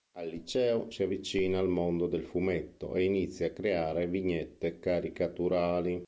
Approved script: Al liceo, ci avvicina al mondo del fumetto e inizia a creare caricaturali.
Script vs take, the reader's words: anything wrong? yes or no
yes